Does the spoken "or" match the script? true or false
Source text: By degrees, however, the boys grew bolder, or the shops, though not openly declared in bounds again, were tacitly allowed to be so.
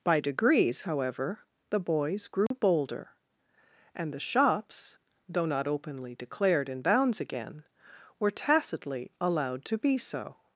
false